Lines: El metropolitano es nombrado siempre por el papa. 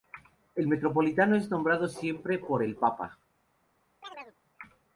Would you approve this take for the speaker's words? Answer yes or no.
yes